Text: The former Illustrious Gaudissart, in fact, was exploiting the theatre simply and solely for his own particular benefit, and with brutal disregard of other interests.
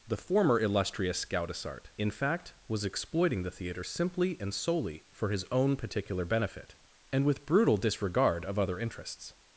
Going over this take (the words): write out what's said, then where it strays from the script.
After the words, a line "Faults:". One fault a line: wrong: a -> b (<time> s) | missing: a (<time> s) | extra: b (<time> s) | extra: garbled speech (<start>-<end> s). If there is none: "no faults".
The former Illustrious Gaudissart, in fact, was exploiting the theatre simply and solely for his own particular benefit, and with brutal disregard of other interests.
Faults:
no faults